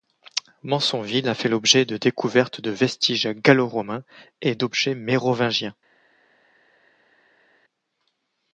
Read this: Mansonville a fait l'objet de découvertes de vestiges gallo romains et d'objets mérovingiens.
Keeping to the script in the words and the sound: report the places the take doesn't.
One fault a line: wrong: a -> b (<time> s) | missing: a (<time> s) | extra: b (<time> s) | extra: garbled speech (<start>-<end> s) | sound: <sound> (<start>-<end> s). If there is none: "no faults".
no faults